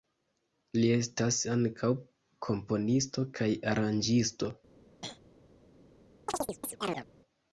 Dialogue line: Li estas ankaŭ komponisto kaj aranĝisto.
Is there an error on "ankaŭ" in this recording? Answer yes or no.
no